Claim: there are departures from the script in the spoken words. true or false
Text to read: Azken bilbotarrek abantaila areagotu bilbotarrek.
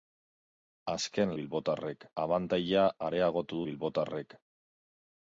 false